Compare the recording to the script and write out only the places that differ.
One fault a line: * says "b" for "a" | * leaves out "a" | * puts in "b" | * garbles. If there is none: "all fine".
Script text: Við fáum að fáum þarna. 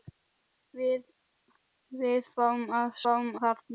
all fine